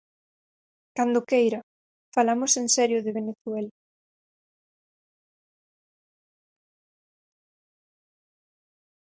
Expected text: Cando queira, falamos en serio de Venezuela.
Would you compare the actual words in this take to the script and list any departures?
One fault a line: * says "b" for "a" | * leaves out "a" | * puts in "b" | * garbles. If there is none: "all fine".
all fine